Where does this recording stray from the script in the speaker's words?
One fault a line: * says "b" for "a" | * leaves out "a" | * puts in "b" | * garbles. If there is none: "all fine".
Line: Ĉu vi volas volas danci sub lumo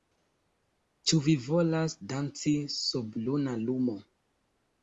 * leaves out "volas"
* puts in "luna"